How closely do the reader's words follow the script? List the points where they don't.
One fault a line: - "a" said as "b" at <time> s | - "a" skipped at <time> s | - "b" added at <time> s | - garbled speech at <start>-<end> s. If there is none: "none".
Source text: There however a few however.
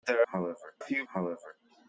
none